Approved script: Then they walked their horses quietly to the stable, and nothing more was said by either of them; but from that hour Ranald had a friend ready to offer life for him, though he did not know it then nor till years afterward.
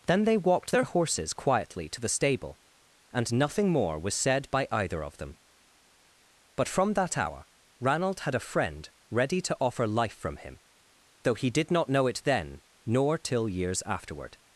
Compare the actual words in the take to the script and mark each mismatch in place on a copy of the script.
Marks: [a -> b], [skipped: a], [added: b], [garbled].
Then they walked their horses quietly to the stable, and nothing more was said by either of them; but from that hour Ranald had a friend ready to offer life [for -> from] him, though he did not know it then nor till years afterward.